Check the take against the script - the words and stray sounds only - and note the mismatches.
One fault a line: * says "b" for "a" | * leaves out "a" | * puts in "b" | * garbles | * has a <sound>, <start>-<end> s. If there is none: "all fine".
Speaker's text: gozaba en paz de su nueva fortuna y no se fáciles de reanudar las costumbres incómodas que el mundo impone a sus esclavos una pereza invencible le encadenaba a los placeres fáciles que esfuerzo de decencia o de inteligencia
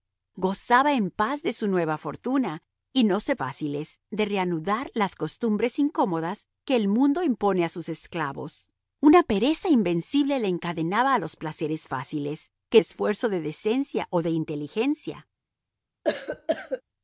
* has a cough, 16.0-16.8 s